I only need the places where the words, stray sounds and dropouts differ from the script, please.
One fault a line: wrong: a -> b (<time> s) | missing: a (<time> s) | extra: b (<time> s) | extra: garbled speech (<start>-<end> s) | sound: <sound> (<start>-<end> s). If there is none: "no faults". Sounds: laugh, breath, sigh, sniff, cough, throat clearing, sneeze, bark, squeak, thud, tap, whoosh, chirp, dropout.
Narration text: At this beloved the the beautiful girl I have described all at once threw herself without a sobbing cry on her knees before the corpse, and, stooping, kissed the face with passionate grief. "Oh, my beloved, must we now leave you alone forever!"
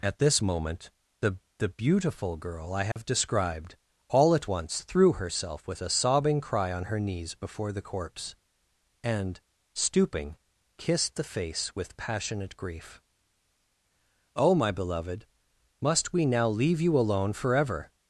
wrong: beloved -> moment (0.4 s)
sound: dropout (2.9-3.0 s)
wrong: without -> with (5.7 s)